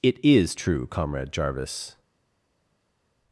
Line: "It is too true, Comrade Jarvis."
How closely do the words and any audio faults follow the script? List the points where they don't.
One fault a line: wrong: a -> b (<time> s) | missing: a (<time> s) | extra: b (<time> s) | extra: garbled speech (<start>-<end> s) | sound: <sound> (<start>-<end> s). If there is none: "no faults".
missing: too (0.6 s)